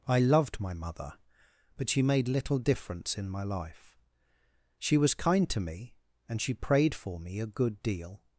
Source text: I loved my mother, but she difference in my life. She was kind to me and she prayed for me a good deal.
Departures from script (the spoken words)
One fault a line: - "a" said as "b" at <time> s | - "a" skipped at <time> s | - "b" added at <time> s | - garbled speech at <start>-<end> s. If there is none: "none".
- "made little" added at 2.0 s